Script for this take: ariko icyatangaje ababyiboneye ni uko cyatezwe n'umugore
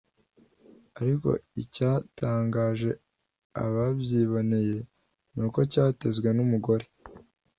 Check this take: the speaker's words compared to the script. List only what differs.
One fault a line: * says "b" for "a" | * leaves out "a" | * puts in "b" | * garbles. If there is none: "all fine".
all fine